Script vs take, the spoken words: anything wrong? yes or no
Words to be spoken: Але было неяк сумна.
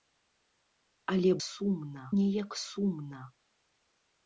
yes